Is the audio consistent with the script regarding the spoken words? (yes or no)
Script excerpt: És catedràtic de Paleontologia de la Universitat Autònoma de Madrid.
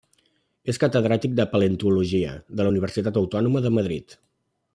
yes